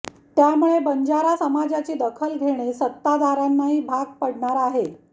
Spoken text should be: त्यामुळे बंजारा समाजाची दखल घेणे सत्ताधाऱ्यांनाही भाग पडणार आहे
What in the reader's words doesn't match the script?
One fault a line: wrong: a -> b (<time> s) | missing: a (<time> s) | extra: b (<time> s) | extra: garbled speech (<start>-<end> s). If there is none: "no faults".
no faults